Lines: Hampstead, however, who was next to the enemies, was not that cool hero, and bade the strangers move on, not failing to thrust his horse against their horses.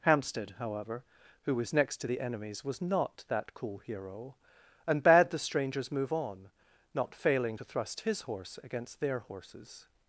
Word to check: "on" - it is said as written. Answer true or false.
true